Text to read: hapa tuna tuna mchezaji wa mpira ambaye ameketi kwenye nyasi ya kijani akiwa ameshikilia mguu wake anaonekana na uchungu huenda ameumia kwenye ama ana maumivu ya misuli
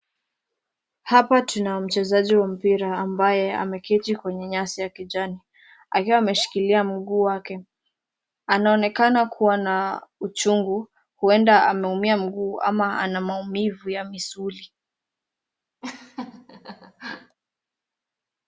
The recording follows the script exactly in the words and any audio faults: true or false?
false